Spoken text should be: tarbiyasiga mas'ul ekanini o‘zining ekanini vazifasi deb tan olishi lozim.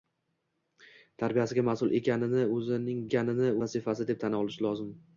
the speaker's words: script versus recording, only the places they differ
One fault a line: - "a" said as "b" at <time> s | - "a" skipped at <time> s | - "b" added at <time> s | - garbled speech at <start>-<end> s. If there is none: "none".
none